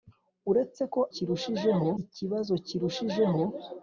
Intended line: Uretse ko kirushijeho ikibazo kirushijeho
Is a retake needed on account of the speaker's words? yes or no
no